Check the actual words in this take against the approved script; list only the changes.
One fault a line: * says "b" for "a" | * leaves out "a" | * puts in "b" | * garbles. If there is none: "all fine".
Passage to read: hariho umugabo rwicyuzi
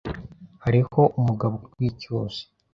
all fine